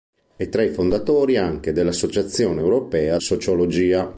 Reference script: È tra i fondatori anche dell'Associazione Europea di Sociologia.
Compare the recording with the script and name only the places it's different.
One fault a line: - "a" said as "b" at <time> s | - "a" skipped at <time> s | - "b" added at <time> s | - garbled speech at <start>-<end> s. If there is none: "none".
- "di" skipped at 3.2 s